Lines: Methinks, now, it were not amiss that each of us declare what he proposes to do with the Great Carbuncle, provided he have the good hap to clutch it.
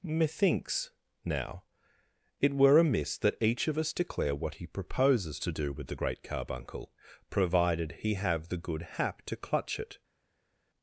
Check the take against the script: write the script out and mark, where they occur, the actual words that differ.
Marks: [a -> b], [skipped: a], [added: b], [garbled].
Methinks, now, it were [skipped: not] amiss that each of us declare what he proposes to do with the Great Carbuncle, provided he have the good hap to clutch it.